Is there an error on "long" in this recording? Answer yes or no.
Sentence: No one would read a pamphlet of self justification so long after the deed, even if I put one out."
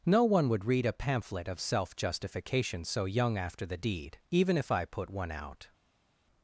yes